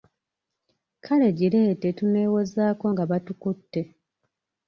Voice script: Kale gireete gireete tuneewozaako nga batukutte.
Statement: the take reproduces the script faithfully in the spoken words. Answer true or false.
false